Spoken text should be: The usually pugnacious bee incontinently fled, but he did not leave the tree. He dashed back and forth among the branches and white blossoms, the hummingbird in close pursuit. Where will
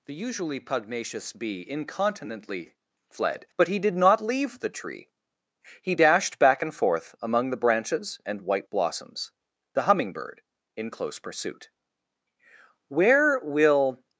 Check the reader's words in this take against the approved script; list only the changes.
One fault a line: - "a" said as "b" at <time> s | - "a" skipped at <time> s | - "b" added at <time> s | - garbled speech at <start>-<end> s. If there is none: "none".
none